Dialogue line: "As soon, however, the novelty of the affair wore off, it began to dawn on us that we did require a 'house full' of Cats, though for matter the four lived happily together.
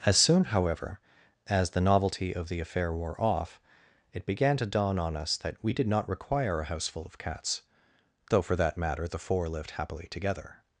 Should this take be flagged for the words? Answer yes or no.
yes